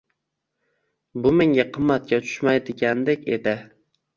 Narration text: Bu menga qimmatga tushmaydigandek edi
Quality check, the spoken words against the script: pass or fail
pass